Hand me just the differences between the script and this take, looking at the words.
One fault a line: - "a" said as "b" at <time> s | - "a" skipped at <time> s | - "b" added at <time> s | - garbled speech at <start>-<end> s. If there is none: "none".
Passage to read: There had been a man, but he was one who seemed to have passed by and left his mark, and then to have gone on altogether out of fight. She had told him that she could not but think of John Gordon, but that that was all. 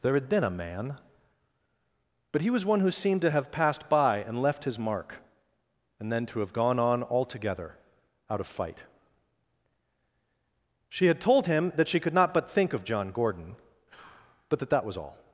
none